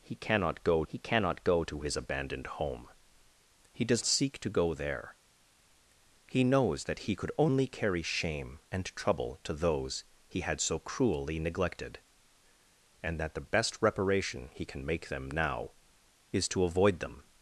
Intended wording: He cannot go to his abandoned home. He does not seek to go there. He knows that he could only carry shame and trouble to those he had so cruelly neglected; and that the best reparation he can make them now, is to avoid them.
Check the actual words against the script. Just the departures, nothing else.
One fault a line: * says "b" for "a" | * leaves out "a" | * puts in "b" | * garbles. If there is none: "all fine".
* puts in "he cannot go"
* leaves out "not"